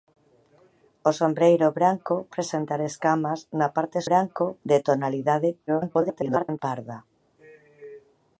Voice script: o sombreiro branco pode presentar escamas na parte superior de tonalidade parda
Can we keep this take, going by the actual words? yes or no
no